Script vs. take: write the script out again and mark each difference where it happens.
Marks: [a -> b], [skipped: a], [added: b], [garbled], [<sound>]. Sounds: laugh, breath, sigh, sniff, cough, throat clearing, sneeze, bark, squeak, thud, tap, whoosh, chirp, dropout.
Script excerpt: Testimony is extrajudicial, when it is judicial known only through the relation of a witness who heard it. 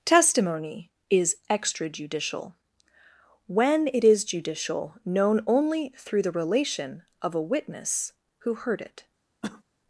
Testimony is extrajudicial, when it is judicial known only through the relation of a witness who heard it. [cough]